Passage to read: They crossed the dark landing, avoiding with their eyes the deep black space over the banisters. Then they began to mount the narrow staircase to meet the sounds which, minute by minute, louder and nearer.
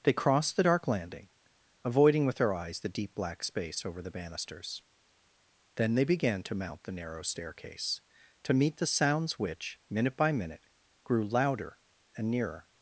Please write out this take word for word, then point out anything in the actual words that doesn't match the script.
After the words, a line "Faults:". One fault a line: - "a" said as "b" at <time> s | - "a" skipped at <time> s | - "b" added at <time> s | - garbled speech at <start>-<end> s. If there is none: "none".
They crossed the dark landing, avoiding with their eyes the deep black space over the banisters. Then they began to mount the narrow staircase to meet the sounds which, minute by minute, grew louder and nearer.
Faults:
- "grew" added at 11.0 s